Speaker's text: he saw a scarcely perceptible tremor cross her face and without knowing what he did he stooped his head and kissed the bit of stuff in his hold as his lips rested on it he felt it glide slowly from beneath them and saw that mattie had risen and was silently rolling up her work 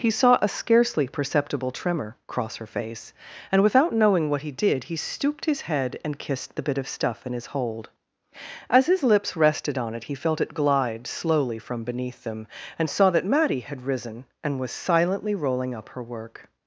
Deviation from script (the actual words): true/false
false